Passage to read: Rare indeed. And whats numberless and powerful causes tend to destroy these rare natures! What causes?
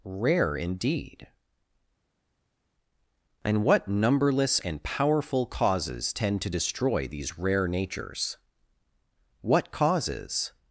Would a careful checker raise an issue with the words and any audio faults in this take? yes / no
yes